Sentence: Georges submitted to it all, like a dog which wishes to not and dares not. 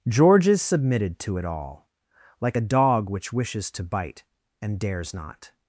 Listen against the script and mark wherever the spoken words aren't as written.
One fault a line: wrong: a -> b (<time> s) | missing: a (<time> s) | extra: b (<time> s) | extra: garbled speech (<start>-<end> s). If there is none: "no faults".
wrong: not -> bite (3.8 s)